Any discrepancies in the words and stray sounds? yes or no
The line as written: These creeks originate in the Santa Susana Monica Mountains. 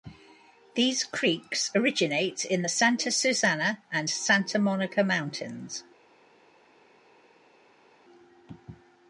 yes